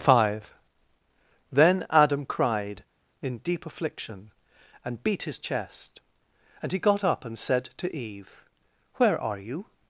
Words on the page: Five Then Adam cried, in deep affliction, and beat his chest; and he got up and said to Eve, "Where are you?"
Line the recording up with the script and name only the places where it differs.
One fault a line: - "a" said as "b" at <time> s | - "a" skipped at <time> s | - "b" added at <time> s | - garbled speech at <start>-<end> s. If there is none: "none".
none